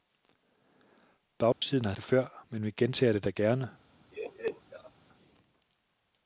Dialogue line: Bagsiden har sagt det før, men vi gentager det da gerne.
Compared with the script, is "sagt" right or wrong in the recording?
wrong